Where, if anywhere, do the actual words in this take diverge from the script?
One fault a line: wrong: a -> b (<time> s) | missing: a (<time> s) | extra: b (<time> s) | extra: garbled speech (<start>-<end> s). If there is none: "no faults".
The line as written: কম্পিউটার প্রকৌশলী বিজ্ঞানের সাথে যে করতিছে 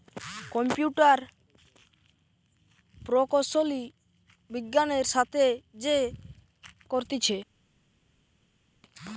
no faults